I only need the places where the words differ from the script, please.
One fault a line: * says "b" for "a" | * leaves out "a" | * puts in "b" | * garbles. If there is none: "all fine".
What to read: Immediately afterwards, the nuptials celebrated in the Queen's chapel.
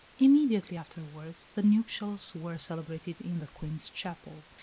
* puts in "were"